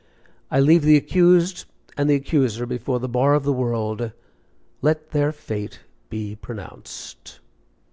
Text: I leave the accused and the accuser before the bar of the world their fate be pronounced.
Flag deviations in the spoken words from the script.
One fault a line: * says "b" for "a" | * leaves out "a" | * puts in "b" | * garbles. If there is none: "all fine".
* puts in "let"